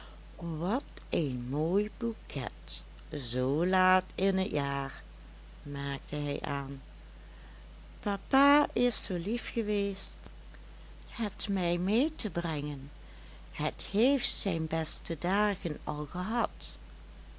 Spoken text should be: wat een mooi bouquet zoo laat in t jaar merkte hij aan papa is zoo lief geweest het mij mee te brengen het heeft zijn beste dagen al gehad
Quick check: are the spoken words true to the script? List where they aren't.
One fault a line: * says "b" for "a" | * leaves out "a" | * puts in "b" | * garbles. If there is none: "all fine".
all fine